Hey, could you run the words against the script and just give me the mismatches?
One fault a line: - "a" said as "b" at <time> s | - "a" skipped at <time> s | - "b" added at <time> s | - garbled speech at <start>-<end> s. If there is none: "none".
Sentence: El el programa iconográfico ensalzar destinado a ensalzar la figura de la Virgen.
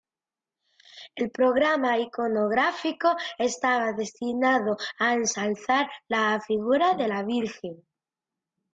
- "el" skipped at 1.3 s
- "ensalzar" said as "estaba" at 3.4 s